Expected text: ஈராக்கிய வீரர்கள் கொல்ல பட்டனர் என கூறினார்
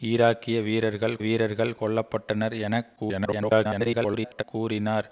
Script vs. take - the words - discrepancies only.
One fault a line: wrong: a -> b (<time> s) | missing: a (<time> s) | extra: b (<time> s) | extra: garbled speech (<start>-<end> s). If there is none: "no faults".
extra: வீரர்கள் (1.2 s)
extra: garbled speech (3.0-4.4 s)